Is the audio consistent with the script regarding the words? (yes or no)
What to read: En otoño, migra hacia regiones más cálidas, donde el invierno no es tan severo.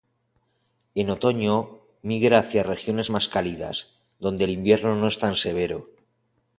yes